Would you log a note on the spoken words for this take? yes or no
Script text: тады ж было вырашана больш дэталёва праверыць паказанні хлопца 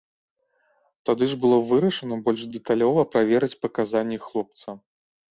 no